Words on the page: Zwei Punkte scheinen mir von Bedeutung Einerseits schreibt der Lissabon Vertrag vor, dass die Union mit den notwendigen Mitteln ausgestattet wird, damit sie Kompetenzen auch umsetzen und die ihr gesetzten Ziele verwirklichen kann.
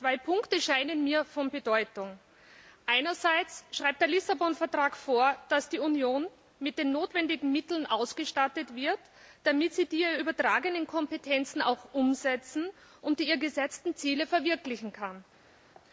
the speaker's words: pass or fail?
fail